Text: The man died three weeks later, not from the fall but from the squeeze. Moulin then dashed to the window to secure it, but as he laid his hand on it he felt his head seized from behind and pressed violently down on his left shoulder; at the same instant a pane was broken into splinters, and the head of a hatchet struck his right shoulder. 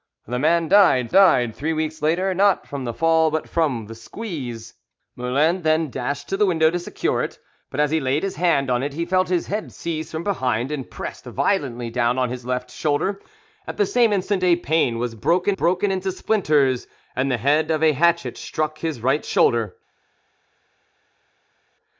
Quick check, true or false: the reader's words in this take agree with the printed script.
false